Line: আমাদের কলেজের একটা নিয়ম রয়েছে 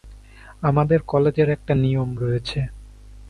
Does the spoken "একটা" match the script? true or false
true